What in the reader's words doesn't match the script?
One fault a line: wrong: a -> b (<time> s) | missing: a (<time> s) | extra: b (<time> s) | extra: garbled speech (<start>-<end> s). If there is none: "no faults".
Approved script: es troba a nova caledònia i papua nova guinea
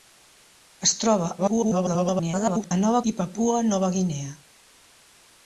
extra: garbled speech (1.4-2.7 s)
missing: caledònia (3.0 s)